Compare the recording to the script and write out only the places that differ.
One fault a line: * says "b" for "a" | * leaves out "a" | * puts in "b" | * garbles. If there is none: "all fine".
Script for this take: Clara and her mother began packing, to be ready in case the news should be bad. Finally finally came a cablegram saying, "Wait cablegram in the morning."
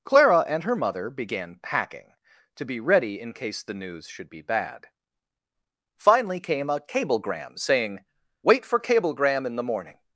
* leaves out "finally"
* puts in "for"